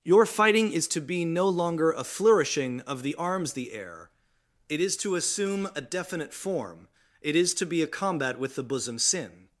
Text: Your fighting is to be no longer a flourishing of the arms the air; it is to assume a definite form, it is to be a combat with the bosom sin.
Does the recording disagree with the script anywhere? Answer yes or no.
no